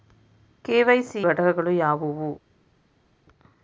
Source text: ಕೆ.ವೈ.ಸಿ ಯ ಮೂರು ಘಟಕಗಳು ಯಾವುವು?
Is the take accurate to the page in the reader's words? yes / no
no